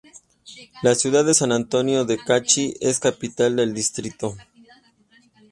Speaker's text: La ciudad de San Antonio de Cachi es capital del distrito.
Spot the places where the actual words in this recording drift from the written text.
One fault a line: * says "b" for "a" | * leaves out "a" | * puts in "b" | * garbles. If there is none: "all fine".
all fine